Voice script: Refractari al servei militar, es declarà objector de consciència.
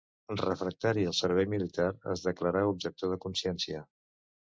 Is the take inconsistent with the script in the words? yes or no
no